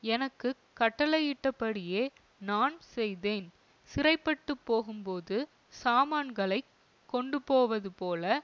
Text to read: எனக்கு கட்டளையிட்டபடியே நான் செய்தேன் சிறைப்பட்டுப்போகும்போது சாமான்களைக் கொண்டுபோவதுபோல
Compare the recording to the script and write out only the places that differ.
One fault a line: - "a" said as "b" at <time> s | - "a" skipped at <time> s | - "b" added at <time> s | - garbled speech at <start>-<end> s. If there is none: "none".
none